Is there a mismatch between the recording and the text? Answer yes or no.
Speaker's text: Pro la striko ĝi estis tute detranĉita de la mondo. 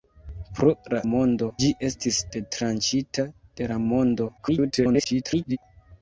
yes